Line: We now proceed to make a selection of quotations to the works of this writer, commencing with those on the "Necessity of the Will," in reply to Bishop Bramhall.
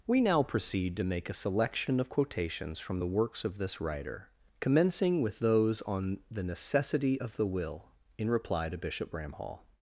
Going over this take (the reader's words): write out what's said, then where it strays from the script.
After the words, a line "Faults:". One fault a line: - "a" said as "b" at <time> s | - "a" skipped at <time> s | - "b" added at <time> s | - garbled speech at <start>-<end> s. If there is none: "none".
We now proceed to make a selection of quotations from the works of this writer, commencing with those on the "Necessity of the Will," in reply to Bishop Bramhall.
Faults:
- "to" said as "from" at 2.8 s